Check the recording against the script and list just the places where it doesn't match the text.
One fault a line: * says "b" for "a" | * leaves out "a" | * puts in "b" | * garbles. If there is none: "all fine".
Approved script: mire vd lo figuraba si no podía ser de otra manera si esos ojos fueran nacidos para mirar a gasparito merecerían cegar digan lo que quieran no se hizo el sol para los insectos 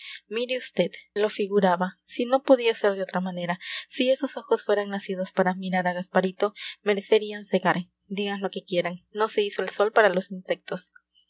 all fine